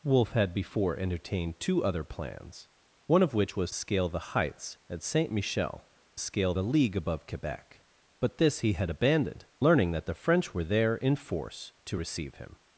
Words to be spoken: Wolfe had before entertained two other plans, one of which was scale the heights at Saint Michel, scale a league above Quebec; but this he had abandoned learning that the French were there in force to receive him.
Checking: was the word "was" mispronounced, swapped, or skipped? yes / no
no